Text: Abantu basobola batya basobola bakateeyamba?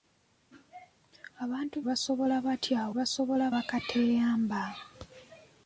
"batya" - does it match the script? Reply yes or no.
yes